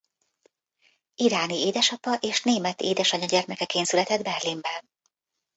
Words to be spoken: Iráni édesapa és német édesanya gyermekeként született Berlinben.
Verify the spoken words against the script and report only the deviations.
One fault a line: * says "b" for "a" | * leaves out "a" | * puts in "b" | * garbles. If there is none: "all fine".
all fine